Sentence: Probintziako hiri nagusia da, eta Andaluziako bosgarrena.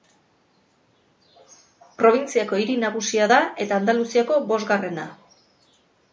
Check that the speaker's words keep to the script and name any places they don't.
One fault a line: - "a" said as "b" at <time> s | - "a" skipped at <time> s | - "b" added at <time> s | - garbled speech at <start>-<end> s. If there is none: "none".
none